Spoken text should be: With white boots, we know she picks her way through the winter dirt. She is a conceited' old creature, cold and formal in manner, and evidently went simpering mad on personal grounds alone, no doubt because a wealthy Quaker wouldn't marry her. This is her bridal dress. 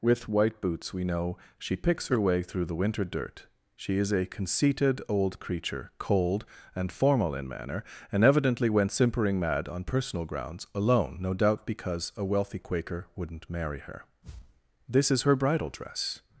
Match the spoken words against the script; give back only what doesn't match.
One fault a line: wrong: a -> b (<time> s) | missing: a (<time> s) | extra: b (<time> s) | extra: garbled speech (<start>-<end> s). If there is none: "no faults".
no faults